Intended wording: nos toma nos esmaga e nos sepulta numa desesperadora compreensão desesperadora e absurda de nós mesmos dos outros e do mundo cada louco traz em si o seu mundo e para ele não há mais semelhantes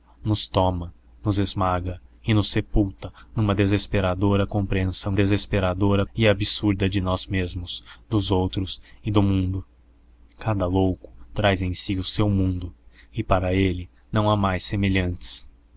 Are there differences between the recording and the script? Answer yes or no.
no